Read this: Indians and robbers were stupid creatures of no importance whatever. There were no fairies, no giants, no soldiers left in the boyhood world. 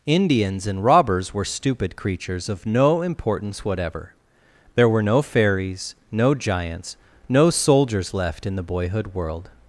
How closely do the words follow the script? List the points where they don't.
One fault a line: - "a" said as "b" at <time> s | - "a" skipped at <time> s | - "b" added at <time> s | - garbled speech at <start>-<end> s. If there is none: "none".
none